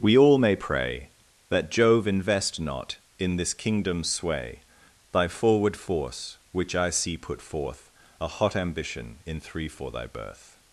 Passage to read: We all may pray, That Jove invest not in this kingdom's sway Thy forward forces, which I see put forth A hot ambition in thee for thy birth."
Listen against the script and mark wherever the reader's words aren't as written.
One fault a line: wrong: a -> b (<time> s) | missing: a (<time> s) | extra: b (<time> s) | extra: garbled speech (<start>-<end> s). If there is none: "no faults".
wrong: forces -> force (5.7 s)
wrong: thee -> three (9.4 s)